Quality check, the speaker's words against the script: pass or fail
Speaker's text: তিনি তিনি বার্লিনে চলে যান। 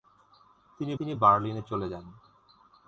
pass